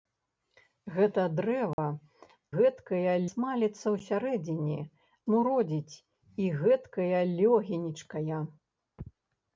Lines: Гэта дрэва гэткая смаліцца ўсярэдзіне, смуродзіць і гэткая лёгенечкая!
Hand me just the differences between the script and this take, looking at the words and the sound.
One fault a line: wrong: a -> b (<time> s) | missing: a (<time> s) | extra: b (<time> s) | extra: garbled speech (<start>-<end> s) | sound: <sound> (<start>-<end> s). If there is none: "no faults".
sound: dropout (1.7-1.8 s)